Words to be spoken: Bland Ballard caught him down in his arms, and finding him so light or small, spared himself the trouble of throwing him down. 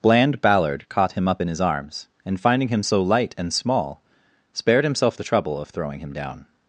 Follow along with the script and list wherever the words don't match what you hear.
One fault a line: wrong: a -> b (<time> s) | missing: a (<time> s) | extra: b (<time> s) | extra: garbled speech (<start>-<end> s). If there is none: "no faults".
wrong: down -> up (1.3 s)
wrong: or -> and (3.4 s)